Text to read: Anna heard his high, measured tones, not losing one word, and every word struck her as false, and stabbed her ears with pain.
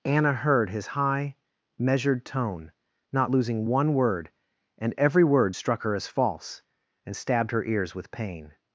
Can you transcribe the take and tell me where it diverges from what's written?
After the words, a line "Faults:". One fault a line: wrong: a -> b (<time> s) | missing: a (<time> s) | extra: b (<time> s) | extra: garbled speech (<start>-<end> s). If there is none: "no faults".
Anna heard his high, measured tone, not losing one word, and every word struck her as false, and stabbed her ears with pain.
Faults:
wrong: tones -> tone (2.2 s)